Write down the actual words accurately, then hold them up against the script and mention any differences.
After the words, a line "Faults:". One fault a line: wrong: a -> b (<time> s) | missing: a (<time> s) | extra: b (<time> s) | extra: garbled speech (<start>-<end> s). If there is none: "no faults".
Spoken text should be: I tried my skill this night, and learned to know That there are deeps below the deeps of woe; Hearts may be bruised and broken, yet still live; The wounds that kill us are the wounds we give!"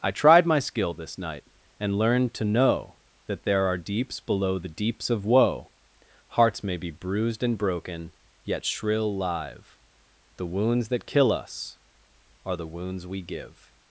I tried my skill this night, and learned to know That there are deeps below the deeps of woe; Hearts may be bruised and broken, yet shrill live; The wounds that kill us are the wounds we give!"
Faults:
wrong: still -> shrill (8.7 s)